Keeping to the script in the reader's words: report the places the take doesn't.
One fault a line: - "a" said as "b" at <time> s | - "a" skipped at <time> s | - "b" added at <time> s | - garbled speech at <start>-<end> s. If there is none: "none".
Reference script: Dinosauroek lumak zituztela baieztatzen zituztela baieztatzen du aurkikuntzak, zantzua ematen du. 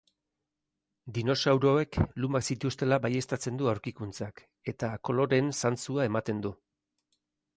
- "zituztela baieztatzen du aurkikuntzak" said as "du aurkikuntzak eta koloreen" at 3.6 s